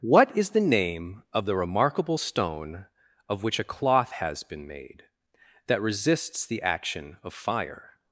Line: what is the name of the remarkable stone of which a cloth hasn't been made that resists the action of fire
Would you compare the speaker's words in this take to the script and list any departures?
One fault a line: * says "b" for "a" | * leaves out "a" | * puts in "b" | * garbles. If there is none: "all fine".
* says "has" for "hasn't"